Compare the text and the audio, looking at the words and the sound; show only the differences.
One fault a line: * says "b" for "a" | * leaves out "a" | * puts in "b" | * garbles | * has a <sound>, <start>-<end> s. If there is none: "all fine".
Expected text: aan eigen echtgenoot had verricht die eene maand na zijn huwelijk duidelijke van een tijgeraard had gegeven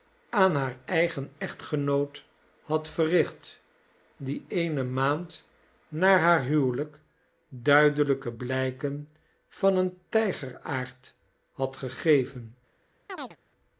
* puts in "haar"
* says "haar" for "zijn"
* puts in "blijken"
* has a chirp, 13.1-13.4 s